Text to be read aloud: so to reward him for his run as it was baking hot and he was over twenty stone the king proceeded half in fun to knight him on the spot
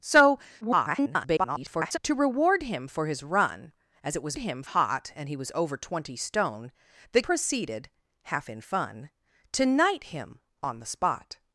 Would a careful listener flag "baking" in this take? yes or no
yes